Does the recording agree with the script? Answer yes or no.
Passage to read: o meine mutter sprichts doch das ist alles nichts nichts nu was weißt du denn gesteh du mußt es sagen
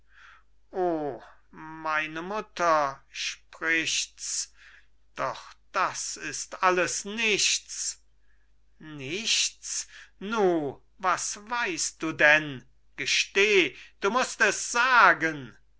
yes